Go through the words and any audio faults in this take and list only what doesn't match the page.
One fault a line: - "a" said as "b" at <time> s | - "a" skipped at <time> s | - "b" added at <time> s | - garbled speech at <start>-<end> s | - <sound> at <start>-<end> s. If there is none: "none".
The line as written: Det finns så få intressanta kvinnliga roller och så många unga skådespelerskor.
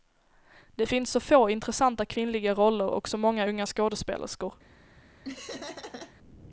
- laugh at 5.2-6.1 s